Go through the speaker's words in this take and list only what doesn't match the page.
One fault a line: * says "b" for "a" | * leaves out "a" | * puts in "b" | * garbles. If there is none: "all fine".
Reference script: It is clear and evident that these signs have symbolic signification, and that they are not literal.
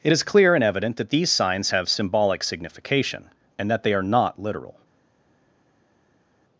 all fine